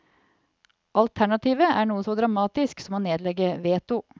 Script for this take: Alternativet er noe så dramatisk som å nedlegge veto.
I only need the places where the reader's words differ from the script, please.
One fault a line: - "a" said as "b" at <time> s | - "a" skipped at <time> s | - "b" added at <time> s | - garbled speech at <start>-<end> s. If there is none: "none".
none